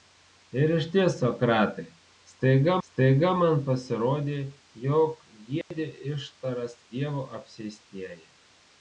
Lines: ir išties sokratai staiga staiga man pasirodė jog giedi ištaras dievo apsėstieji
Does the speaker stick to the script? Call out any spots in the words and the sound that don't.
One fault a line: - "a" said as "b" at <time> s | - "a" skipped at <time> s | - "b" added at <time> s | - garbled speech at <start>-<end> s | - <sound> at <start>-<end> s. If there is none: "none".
- dropout at 5.6-5.7 s